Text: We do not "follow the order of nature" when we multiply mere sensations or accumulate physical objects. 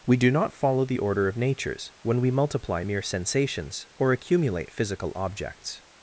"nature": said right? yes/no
no